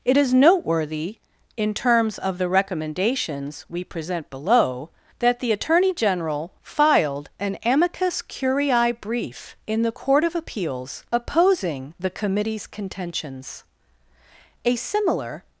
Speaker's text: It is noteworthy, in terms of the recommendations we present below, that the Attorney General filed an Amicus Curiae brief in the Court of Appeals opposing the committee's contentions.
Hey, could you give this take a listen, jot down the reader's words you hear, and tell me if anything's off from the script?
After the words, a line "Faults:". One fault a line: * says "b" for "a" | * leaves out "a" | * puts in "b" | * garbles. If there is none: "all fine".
It is noteworthy, in terms of the recommendations we present below, that the Attorney General filed an Amicus Curiae brief in the Court of Appeals opposing the committee's contentions. A similar
Faults:
* puts in "A similar"